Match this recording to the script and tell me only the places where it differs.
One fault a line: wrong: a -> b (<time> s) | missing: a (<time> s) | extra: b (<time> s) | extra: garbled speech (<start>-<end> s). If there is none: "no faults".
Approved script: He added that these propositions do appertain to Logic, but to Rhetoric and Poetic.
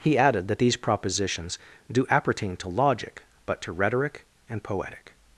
no faults